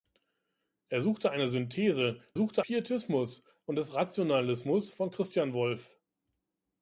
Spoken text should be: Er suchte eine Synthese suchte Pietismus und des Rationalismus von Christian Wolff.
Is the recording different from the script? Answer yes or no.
no